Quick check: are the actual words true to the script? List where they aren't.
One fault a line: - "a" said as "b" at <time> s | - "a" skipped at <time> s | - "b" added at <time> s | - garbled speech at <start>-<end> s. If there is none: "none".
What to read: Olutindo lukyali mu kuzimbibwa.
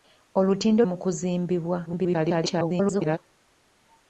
- "lukyali" skipped at 0.8 s
- garbled speech at 1.9-3.2 s